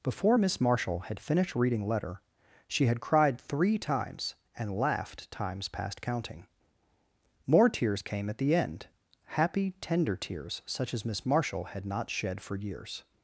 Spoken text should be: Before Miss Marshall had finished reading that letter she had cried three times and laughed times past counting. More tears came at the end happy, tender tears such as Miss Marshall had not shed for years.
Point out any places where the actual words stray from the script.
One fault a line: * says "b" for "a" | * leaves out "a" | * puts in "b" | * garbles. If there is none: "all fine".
* leaves out "that"